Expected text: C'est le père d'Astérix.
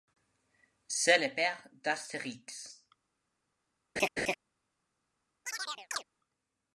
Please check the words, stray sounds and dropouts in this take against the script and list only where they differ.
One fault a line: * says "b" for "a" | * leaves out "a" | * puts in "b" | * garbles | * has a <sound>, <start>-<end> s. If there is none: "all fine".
* has a laugh, 4.0-4.3 s
* has a chirp, 5.5-6.0 s